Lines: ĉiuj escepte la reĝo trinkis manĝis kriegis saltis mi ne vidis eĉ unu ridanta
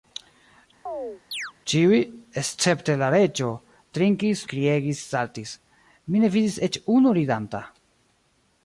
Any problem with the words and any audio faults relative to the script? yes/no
yes